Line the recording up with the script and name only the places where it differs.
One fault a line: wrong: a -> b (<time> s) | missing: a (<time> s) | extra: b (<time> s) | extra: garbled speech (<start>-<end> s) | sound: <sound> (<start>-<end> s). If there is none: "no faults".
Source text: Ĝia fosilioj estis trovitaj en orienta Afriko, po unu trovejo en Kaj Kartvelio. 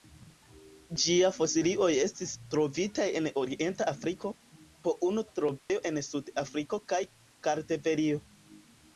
sound: dropout (5.6-5.7 s)
extra: Sud Afriko (6.1 s)